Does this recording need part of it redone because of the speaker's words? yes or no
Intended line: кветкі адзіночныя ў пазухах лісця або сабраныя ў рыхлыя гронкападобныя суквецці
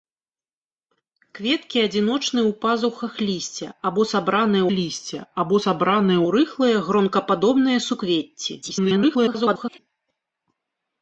yes